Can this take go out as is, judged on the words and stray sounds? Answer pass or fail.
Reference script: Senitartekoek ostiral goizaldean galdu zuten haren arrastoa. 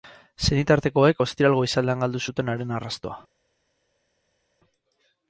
pass